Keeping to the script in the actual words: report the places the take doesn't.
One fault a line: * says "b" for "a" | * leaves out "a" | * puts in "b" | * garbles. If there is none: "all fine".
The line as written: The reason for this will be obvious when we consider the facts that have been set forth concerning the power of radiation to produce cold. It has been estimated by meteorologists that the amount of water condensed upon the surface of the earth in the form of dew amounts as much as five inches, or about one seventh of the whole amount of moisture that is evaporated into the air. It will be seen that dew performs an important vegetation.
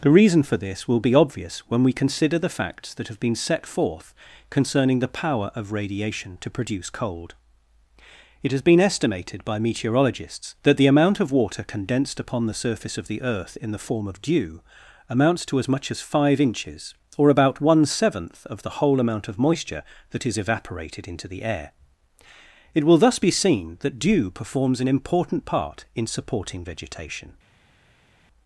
* puts in "to"
* puts in "thus"
* puts in "part in supporting"